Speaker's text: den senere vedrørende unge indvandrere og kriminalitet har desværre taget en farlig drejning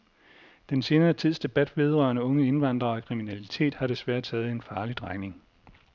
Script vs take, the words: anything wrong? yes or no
yes